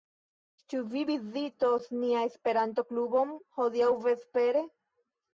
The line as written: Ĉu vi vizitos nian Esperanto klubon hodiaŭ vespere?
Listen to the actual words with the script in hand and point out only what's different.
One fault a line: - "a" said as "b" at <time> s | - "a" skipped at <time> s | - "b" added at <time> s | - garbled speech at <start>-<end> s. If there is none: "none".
none